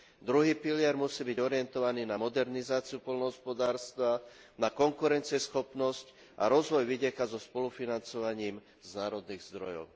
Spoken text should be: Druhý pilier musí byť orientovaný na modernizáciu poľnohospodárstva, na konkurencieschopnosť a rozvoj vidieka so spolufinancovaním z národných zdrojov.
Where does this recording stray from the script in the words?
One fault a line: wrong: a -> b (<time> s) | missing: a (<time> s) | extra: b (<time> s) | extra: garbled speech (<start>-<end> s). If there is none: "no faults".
no faults